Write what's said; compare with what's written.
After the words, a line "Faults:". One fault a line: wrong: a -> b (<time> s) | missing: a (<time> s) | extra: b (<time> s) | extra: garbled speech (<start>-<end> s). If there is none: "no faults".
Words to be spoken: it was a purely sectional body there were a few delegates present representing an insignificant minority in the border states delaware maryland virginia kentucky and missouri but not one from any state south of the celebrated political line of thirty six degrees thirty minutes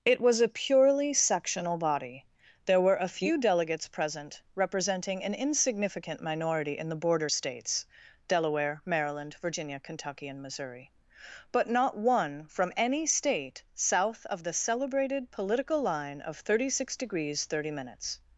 it was a purely sectional body there were a few delegates present representing an insignificant minority in the border states delaware maryland virginia kentucky and missouri but not one from any state south of the celebrated political line of thirty six degrees thirty minutes
Faults:
no faults